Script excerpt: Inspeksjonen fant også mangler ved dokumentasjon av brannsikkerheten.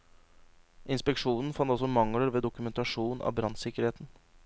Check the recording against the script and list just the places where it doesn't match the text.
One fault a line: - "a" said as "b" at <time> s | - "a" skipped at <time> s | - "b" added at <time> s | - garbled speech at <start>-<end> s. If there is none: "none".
none